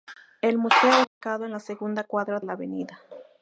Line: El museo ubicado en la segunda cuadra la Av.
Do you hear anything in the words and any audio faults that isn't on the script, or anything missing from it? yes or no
yes